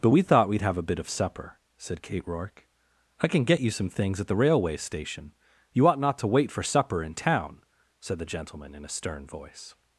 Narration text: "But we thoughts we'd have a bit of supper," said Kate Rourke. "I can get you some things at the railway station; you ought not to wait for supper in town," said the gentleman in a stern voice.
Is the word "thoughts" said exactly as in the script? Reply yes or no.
no